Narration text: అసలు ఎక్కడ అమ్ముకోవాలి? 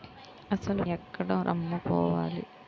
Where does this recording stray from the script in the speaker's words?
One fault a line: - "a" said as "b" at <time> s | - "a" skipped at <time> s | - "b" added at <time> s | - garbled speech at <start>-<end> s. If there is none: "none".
none